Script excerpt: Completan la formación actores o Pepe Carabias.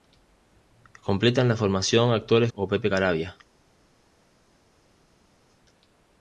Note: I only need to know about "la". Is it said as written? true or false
true